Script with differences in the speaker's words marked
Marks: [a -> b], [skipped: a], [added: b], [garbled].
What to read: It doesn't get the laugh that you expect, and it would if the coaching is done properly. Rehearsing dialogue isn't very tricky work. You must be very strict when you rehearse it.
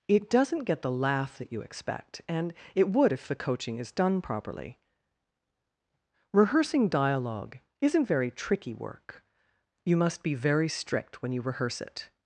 It doesn't get the laugh that you expect, and it would if the coaching is done properly. Rehearsing dialogue isn't very tricky work. You must be very strict when you rehearse it.